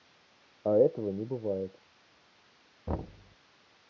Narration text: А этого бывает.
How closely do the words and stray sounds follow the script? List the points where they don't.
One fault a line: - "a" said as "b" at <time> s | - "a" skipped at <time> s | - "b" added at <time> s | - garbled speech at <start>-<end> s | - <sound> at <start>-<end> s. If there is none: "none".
- "не" added at 1.1 s
- thud at 2.9-3.4 s